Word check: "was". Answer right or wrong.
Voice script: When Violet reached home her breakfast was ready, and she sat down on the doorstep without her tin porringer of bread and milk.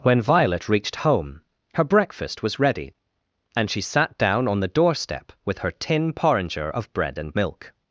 right